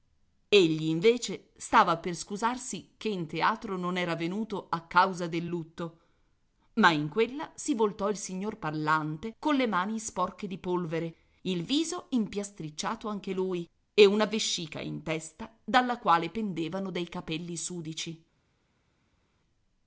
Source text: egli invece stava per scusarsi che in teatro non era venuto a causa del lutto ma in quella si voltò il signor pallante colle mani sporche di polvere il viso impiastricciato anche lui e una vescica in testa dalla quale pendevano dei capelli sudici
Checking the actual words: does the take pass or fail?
pass